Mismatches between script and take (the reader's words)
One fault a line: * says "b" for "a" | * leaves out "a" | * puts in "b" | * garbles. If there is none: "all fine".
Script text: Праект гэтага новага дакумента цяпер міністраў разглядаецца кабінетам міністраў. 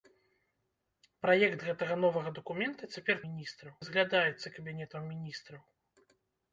all fine